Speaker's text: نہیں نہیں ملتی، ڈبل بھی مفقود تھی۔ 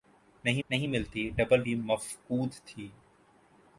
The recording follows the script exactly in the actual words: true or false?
true